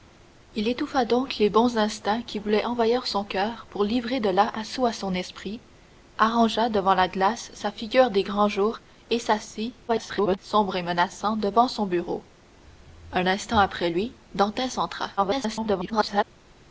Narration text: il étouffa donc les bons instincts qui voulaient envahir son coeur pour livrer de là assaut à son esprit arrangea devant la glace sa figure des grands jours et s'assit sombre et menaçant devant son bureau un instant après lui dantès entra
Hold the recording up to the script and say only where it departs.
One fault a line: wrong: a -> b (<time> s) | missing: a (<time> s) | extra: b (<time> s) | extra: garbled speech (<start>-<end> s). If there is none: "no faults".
extra: garbled speech (9.9-10.4 s)
extra: garbled speech (15.2-16.2 s)